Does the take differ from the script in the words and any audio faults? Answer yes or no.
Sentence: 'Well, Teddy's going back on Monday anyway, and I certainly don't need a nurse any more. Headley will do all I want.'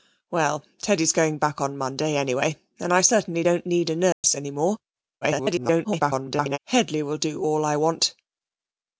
yes